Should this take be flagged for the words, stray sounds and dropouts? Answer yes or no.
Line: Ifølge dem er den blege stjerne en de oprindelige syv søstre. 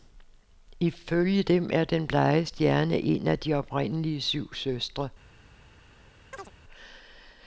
yes